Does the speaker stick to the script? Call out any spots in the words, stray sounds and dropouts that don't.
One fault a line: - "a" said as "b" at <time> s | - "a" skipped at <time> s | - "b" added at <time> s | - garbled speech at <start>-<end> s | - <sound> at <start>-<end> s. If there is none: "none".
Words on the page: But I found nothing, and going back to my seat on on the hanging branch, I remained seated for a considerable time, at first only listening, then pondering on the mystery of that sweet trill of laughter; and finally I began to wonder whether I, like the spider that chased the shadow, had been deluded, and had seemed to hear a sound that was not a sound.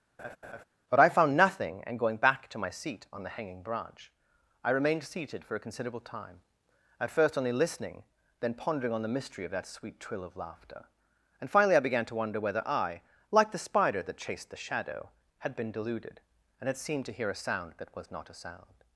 - laugh at 0.2-0.6 s
- "on" skipped at 3.2 s